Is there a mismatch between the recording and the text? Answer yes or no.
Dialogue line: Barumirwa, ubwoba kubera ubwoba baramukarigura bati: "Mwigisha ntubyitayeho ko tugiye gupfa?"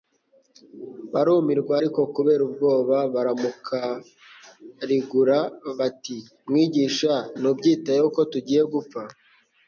yes